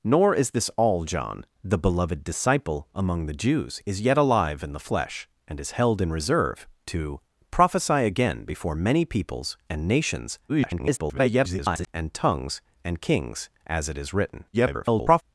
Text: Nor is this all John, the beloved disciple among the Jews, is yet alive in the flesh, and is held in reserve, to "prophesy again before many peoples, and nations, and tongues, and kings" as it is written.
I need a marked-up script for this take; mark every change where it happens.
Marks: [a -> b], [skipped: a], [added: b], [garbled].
Nor is this all John, the beloved disciple among the Jews, is yet alive in the flesh, and is held in reserve, to "prophesy again before many peoples, and nations, [garbled] and tongues, and kings" as it is written. [garbled]